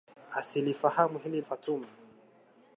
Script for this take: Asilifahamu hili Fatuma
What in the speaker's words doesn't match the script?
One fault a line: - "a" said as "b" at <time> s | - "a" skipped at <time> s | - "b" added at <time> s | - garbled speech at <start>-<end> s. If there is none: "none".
none